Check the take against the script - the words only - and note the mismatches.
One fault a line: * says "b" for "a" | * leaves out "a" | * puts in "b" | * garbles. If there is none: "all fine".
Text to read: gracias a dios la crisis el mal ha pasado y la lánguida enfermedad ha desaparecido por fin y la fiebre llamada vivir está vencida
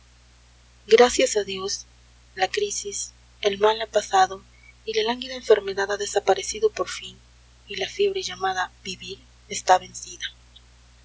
all fine